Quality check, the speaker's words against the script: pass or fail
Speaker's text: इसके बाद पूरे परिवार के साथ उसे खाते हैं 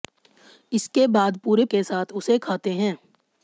fail